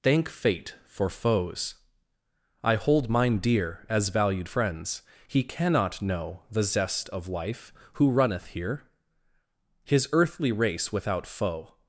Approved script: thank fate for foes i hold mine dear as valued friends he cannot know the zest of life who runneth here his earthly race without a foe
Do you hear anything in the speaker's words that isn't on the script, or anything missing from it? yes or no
yes